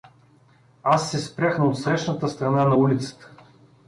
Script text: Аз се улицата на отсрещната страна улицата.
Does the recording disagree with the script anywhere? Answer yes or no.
yes